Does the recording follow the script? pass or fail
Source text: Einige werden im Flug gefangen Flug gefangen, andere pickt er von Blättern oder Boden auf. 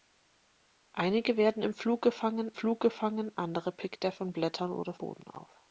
pass